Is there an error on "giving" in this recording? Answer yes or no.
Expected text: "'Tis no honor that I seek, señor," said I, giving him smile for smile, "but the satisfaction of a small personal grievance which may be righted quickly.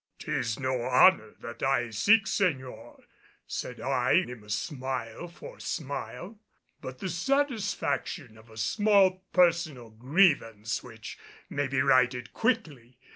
yes